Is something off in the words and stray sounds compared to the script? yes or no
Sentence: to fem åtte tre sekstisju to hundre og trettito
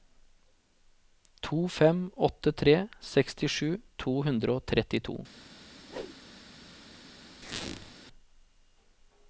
yes